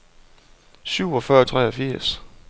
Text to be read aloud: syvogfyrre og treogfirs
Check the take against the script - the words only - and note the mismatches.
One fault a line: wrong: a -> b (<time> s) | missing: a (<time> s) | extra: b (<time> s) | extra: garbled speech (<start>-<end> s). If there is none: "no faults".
no faults